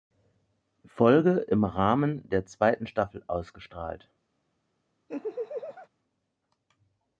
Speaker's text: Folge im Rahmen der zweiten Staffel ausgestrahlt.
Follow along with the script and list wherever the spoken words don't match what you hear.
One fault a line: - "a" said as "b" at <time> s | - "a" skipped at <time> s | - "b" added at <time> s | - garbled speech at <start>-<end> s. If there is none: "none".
none